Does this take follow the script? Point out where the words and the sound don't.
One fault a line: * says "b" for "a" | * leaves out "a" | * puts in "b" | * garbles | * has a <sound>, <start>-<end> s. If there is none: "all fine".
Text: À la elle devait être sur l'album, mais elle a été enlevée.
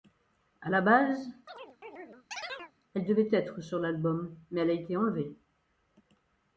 * puts in "base"
* has a chirp, 1.5-2.7 s